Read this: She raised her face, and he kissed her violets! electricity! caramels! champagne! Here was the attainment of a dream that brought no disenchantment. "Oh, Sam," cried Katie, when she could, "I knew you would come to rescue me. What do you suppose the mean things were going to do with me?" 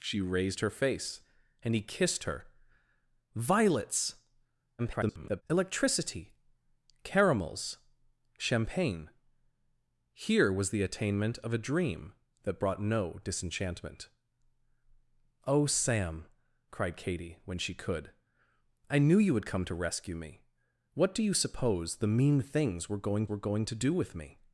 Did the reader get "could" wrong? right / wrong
right